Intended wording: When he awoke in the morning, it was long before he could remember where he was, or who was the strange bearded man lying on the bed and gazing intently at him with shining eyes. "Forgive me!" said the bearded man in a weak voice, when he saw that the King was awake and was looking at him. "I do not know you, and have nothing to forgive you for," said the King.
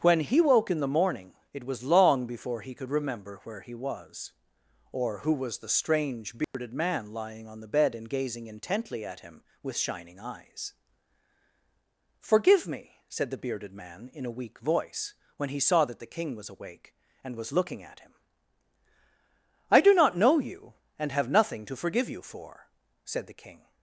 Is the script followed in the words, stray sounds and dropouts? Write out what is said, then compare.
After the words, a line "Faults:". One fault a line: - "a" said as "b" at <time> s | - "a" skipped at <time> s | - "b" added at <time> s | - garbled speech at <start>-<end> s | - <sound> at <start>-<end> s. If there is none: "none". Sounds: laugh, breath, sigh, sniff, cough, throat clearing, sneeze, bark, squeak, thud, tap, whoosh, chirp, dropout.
When he woke in the morning, it was long before he could remember where he was, or who was the strange bearded man lying on the bed and gazing intently at him with shining eyes. "Forgive me!" said the bearded man in a weak voice, when he saw that the King was awake and was looking at him. "I do not know you, and have nothing to forgive you for," said the King.
Faults:
- "awoke" said as "woke" at 0.4 s
- dropout at 6.4-6.5 s